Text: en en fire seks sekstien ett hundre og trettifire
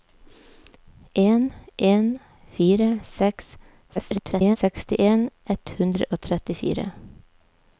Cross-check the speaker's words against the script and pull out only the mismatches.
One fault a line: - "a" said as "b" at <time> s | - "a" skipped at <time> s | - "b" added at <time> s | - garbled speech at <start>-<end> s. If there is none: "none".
- garbled speech at 3.9-4.6 s